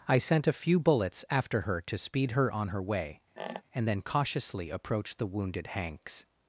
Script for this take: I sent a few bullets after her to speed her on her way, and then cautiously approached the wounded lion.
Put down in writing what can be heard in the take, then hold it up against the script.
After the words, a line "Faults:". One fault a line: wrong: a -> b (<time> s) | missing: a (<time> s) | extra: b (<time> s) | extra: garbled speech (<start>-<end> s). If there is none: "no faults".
I sent a few bullets after her to speed her on her way, and then cautiously approached the wounded hanks.
Faults:
wrong: lion -> hanks (5.7 s)